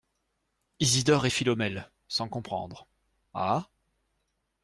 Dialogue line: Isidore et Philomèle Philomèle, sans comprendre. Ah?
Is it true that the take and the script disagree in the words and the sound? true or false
true